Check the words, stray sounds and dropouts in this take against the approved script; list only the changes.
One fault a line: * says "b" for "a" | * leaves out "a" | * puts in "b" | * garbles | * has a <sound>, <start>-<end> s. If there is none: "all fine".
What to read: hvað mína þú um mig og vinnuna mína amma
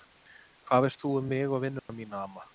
* says "veist" for "mína"
* has a dropout, 1.8-1.9 s